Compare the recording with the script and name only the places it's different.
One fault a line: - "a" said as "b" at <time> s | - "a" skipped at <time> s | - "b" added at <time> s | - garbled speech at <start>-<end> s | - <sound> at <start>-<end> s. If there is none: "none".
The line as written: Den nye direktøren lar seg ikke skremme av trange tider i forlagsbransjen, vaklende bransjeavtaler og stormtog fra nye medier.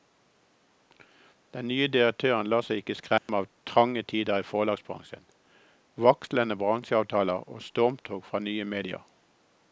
- dropout at 3.2-3.3 s